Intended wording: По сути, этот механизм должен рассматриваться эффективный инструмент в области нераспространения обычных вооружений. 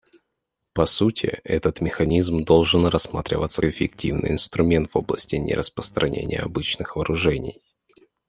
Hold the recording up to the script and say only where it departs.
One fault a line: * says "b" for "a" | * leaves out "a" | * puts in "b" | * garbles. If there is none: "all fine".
all fine